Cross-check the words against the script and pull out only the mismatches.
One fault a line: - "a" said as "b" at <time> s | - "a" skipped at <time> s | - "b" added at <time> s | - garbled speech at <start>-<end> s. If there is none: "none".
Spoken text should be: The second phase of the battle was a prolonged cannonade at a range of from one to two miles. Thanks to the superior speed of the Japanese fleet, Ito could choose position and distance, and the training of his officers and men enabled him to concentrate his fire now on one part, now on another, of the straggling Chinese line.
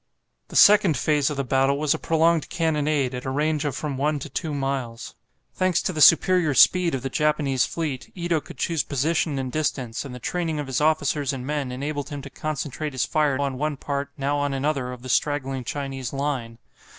- "now" skipped at 13.4 s